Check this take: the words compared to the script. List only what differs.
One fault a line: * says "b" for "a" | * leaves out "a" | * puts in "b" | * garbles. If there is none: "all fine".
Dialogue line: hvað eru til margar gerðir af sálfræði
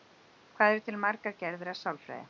all fine